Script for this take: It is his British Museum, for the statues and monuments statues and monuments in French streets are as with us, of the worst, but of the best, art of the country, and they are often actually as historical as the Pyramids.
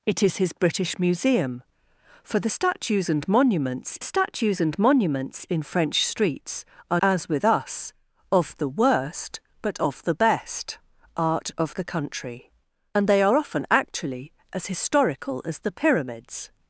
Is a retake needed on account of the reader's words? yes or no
no